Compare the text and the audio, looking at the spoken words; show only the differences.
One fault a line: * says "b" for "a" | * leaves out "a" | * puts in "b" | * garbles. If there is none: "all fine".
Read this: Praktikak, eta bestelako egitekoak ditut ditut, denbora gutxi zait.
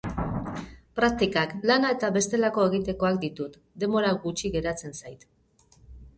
* puts in "lana"
* leaves out "ditut"
* puts in "geratzen"